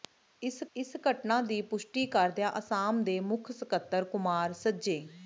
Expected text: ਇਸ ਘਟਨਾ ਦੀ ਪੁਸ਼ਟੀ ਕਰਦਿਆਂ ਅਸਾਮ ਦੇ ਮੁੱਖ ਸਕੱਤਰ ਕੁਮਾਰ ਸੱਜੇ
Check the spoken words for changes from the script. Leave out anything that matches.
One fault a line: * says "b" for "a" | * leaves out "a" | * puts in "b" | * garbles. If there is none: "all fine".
* puts in "ਇਸ"